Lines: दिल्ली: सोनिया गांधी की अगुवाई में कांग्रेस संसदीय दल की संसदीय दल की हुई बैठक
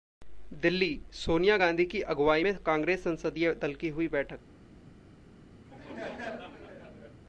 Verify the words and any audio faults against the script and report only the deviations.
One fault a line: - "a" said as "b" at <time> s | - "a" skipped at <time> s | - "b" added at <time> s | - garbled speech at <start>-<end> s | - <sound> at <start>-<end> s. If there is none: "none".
- "संसदीय दल की" skipped at 3.9 s
- laugh at 5.7-7.2 s